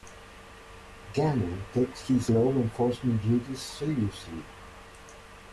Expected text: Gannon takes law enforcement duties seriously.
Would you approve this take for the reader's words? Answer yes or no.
no